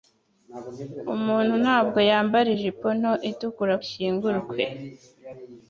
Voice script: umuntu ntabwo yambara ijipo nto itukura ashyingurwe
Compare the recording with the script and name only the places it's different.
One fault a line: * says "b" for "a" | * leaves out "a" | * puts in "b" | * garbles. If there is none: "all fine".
all fine